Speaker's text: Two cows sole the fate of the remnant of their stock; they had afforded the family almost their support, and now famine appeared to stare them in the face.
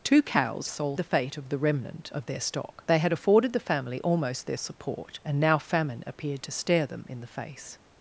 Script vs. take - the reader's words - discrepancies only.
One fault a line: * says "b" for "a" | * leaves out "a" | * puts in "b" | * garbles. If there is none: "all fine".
all fine